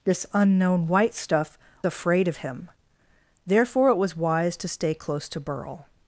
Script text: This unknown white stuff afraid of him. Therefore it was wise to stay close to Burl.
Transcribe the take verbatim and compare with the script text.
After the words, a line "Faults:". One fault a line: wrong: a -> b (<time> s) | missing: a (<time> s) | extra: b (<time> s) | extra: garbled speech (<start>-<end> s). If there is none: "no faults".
This unknown white stuff afraid of him. Therefore it was wise to stay close to Burl.
Faults:
no faults